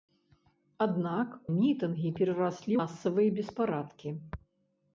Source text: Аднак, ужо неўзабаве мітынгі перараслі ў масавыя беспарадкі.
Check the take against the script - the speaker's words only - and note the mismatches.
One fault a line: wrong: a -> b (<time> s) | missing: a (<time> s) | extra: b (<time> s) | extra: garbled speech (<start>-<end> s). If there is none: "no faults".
missing: ужо неўзабаве (1.4 s)
missing: ў (2.8 s)